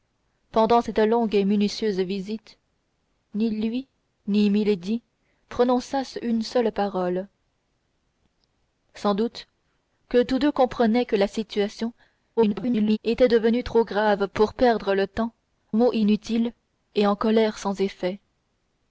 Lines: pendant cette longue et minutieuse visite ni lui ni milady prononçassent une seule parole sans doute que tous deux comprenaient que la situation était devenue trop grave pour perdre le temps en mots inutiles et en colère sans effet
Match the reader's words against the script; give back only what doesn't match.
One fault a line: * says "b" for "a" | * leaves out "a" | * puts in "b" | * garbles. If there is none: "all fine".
* garbles
* leaves out "en"